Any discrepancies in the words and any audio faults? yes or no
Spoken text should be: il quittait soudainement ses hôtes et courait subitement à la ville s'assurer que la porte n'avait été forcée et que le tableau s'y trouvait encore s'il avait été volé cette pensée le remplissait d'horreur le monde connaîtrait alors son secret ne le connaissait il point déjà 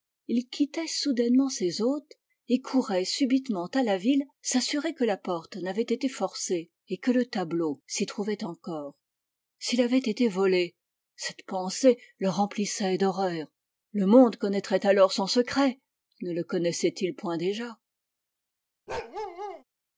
yes